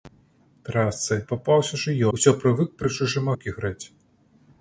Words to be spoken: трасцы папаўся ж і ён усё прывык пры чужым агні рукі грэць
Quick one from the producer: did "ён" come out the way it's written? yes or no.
no